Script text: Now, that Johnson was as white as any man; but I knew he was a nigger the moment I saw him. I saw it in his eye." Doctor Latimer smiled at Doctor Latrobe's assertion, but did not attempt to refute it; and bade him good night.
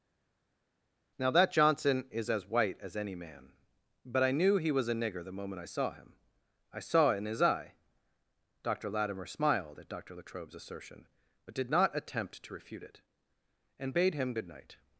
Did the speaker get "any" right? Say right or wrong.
right